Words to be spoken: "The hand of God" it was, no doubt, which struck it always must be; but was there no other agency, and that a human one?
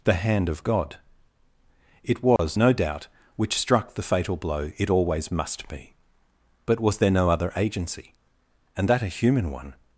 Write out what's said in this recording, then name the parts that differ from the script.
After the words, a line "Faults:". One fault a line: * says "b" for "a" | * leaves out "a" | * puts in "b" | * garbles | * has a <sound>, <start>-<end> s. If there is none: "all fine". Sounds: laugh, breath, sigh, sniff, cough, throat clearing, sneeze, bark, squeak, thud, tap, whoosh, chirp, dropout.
"The hand of God" it was, no doubt, which struck the fatal blow it always must be; but was there no other agency, and that a human one?
Faults:
* has a dropout, 2.4-2.4 s
* puts in "the fatal blow"